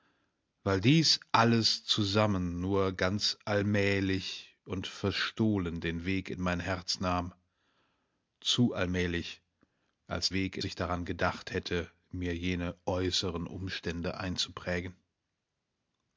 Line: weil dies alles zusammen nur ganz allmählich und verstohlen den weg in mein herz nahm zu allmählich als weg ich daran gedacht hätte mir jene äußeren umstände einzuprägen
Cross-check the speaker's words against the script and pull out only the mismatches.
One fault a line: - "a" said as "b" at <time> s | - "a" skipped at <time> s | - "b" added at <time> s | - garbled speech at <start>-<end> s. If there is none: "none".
none